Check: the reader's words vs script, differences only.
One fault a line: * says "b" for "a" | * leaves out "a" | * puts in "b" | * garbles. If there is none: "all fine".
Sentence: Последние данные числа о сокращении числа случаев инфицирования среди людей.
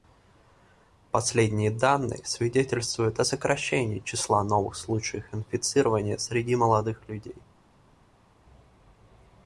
* says "свидетельствуют" for "числа"
* puts in "новых"
* puts in "молодых"